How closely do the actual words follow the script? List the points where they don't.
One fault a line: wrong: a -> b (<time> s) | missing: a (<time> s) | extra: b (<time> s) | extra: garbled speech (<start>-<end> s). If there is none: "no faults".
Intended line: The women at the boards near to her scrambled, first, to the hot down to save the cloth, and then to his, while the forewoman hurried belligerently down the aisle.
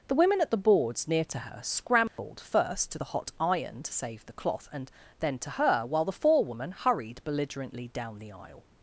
wrong: down -> iron (3.4 s)
wrong: his -> her (5.5 s)